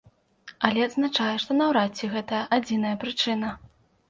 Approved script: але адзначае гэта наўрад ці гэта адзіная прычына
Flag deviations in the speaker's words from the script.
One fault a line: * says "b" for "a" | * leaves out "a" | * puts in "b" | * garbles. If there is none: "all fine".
* says "што" for "гэта"